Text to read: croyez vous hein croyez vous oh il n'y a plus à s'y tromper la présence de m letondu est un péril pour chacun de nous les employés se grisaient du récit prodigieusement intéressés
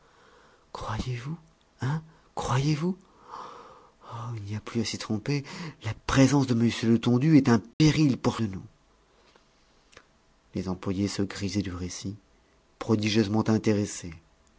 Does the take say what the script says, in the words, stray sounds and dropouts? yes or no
no